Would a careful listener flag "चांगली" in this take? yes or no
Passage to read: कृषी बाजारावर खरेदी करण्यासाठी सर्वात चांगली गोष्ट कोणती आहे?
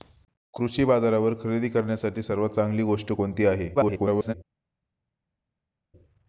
no